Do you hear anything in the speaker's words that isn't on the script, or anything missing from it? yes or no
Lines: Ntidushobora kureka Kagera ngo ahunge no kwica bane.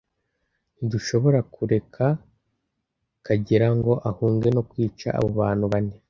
yes